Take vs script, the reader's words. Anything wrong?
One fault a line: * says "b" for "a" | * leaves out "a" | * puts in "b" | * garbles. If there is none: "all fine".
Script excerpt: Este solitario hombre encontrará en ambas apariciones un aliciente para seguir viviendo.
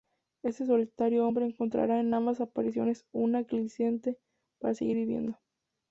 all fine